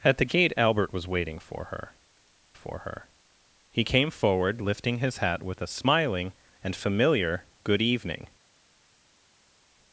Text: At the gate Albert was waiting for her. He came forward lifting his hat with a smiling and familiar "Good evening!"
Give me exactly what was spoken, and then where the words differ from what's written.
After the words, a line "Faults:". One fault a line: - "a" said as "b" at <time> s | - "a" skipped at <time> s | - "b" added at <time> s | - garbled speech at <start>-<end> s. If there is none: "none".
At the gate Albert was waiting for her for her. He came forward lifting his hat with a smiling and familiar "Good evening!"
Faults:
- "for her" added at 2.5 s